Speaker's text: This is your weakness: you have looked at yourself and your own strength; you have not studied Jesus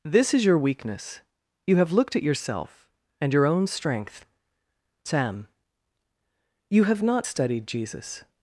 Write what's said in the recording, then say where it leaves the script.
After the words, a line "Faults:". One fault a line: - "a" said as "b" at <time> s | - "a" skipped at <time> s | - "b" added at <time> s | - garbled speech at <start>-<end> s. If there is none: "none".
This is your weakness: you have looked at yourself and your own strength; sam you have not studied Jesus
Faults:
- "sam" added at 5.0 s